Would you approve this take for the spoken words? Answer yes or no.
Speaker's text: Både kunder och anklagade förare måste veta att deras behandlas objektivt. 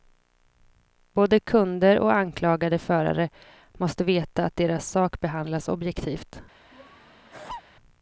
no